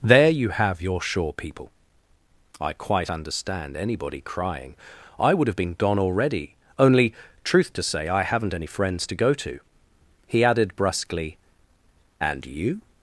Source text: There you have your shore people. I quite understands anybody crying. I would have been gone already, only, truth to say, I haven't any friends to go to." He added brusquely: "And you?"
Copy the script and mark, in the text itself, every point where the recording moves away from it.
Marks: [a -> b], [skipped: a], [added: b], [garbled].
There you have your shore people. I quite [understands -> understand] anybody crying. I would have been gone already, only, truth to say, I haven't any friends to go to." He added brusquely: "And you?"